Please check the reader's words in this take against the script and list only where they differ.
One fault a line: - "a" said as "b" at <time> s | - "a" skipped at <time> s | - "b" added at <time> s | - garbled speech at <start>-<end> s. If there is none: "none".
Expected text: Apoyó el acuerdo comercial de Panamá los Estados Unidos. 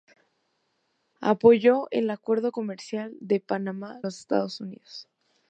none